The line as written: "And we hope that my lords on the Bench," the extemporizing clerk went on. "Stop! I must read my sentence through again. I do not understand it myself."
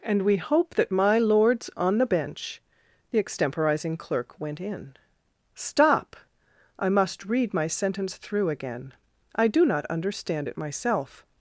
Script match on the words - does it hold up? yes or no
no